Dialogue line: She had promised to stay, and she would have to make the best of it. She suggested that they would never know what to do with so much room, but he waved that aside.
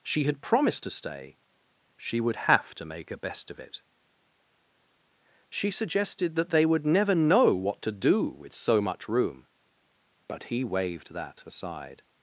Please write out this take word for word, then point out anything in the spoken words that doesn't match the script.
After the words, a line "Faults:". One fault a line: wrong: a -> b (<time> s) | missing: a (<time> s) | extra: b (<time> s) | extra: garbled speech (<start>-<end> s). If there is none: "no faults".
She had promised to stay, she would have to make a best of it. She suggested that they would never know what to do with so much room, but he waved that aside.
Faults:
missing: and (1.4 s)
wrong: the -> a (3.1 s)